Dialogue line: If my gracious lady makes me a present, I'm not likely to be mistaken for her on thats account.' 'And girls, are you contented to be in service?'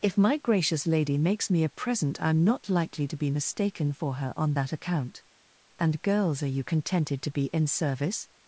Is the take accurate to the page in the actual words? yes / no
no